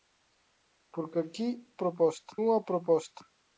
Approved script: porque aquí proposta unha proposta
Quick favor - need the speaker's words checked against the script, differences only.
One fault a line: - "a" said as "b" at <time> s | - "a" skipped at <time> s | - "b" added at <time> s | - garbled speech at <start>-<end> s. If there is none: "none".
none